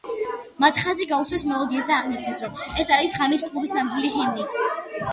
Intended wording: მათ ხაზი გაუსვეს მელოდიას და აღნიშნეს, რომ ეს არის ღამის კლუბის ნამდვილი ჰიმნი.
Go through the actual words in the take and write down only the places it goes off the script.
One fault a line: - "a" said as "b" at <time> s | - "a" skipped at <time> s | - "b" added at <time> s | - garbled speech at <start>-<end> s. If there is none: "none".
none